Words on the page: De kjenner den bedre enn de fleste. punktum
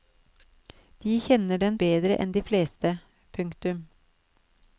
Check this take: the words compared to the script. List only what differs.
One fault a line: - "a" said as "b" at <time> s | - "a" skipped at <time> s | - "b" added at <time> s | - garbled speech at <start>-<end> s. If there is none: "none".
none